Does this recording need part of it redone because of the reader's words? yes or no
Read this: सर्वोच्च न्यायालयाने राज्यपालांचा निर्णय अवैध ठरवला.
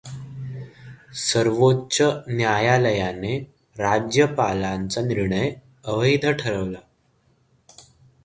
no